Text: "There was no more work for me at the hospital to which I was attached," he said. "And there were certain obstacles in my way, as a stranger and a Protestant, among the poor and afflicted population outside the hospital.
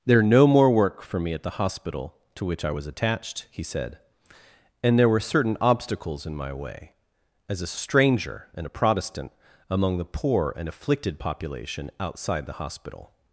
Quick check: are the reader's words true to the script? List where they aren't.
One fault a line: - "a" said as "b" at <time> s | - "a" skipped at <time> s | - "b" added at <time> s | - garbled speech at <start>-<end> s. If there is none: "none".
- "was" skipped at 0.2 s